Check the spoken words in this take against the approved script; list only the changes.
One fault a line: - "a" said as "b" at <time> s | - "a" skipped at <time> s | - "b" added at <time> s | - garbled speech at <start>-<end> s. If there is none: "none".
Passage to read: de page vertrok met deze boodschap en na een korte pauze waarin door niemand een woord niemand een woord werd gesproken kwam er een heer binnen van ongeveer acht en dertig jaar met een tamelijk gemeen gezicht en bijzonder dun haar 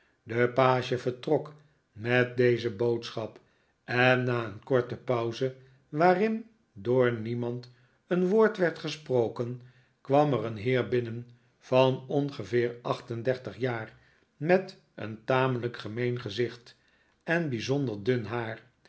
- "niemand een woord" skipped at 8.6 s